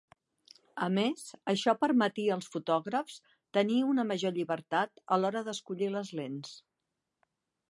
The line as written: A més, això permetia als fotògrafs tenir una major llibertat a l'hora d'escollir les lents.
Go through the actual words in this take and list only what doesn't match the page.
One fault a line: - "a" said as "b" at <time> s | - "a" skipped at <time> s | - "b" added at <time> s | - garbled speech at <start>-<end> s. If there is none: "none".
none